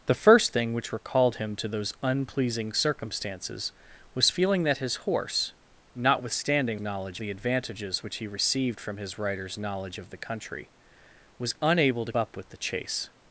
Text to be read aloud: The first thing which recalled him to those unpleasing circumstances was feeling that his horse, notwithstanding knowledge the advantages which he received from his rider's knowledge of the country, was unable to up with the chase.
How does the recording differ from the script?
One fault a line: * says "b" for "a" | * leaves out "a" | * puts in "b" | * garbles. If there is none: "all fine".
all fine